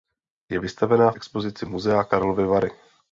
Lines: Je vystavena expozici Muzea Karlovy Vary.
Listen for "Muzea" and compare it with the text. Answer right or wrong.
right